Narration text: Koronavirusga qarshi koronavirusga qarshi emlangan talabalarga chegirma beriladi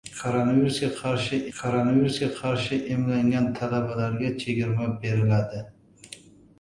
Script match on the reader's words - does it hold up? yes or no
yes